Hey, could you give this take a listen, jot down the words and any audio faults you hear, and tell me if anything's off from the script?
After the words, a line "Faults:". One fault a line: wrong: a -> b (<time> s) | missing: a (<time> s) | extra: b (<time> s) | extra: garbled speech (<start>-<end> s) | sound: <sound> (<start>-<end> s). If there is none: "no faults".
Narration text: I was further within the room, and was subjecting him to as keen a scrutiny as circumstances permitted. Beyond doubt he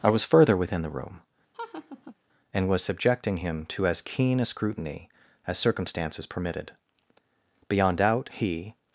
I was further within the room, and was subjecting him to as keen a scrutiny as circumstances permitted. Beyond doubt he
Faults:
sound: laugh (1.5-2.1 s)